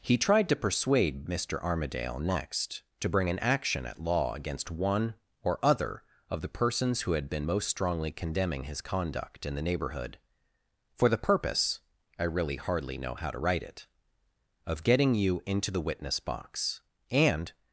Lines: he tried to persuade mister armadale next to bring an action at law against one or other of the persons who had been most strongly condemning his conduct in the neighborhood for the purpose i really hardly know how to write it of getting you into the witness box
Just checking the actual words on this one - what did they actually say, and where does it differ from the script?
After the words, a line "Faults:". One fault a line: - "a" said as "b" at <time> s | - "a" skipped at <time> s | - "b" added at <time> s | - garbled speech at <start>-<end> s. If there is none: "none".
he tried to persuade mister armadale next to bring an action at law against one or other of the persons who had been most strongly condemning his conduct in the neighborhood for the purpose i really hardly know how to write it of getting you into the witness box and
Faults:
- "and" added at 17.1 s